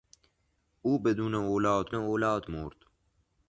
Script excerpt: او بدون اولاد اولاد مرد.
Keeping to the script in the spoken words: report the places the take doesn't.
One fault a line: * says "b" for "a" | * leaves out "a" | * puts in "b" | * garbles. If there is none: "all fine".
all fine